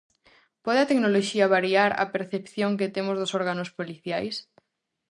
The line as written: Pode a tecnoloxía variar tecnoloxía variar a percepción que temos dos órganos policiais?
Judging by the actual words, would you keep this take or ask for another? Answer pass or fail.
fail